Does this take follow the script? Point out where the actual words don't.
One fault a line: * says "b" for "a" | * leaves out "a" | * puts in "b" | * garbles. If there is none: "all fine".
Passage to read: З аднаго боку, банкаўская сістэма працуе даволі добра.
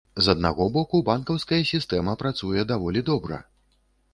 all fine